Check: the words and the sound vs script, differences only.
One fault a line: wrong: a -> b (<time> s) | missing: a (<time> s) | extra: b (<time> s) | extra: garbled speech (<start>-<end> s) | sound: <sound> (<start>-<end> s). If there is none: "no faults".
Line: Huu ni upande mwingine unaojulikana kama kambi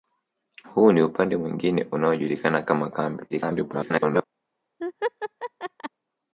extra: garbled speech (3.3-4.2 s)
sound: laugh (4.8-5.9 s)